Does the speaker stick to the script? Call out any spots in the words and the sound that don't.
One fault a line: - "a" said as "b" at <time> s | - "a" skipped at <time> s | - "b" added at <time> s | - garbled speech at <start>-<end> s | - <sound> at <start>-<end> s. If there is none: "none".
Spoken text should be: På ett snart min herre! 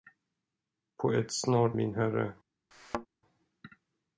- thud at 2.7-3.1 s